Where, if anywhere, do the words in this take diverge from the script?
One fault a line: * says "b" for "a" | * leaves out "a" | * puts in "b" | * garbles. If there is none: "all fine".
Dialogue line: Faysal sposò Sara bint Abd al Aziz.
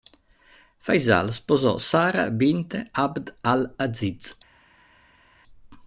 all fine